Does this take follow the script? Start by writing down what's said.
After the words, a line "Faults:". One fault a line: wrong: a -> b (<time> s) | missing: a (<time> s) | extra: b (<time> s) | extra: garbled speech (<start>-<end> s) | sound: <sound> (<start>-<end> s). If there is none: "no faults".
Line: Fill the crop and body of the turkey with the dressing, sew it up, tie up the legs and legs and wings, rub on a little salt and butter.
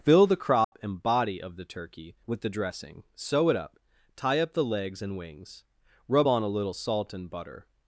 Fill the crop and body of the turkey with the dressing, sew it up, tie up the legs and wings, rub on a little salt and butter.
Faults:
sound: dropout (0.6-0.7 s)
missing: legs and (5.2 s)